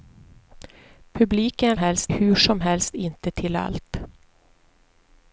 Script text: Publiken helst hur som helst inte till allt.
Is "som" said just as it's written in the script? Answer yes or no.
yes